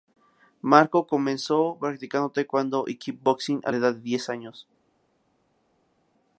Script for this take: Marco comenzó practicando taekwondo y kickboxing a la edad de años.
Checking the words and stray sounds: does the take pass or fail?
fail